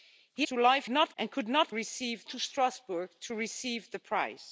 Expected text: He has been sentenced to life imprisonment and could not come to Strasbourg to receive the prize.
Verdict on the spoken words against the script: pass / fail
fail